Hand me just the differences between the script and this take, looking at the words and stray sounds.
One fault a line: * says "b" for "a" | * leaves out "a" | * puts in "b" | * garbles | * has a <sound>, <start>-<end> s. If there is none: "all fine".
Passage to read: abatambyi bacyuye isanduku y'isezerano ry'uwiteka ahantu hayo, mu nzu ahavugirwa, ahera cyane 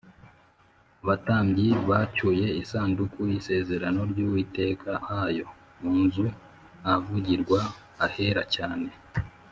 * leaves out "ahantu"